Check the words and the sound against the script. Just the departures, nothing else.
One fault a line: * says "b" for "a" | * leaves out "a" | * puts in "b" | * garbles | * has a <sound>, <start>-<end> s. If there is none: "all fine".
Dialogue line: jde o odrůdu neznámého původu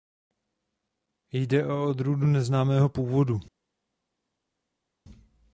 all fine